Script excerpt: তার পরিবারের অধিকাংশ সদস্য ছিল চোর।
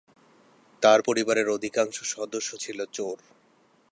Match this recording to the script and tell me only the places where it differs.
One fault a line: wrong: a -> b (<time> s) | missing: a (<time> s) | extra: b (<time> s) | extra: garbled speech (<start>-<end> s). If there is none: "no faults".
no faults